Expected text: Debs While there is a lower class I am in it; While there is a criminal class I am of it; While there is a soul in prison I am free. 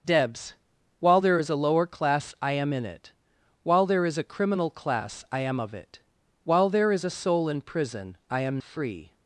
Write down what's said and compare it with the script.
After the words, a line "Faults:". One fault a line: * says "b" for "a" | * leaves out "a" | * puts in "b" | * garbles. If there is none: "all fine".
Debs While there is a lower class I am in it; While there is a criminal class I am of it; While there is a soul in prison I am free.
Faults:
all fine